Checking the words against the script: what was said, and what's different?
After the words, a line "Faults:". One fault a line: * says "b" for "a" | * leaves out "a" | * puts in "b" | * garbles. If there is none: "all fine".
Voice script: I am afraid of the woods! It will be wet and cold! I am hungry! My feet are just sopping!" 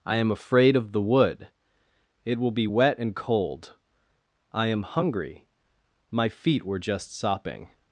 I am afraid of the wood! It will be wet and cold! I am hungry! My feet were just sopping!"
Faults:
* says "wood" for "woods"
* says "were" for "are"